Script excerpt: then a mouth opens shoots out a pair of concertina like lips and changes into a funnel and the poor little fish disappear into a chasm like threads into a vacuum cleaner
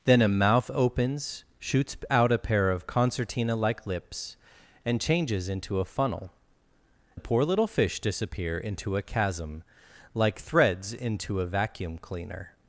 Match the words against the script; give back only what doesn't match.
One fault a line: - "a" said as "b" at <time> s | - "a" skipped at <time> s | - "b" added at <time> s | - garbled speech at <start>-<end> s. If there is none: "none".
- "and" skipped at 6.3 s